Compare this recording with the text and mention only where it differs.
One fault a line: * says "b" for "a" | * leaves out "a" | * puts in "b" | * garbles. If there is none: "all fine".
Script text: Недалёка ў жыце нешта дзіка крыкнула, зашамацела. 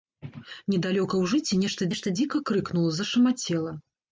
* puts in "нешта"